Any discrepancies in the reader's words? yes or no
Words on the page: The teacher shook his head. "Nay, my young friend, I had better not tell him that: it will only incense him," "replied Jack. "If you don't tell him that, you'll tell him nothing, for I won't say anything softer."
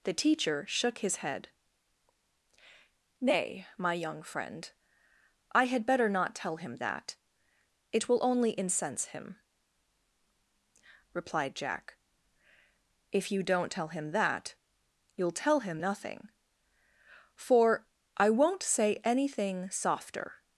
no